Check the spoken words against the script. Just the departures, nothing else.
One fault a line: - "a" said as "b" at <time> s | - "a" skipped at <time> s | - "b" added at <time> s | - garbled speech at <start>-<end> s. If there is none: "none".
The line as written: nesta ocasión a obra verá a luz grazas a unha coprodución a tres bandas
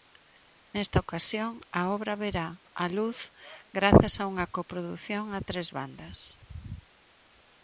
none